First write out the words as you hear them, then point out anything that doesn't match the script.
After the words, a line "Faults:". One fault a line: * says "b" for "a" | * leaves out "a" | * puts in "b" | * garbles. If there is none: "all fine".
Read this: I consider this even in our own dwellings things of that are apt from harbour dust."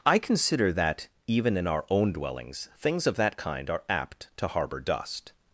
I consider that even in our own dwellings things of that kind are apt to harbour dust."
Faults:
* says "that" for "this"
* puts in "kind"
* says "to" for "from"